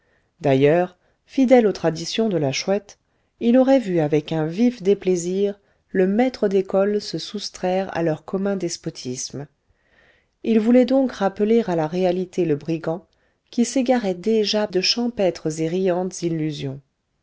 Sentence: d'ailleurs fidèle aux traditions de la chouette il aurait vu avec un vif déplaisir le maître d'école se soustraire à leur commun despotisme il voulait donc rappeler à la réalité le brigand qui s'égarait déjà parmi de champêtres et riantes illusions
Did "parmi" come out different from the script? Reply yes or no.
yes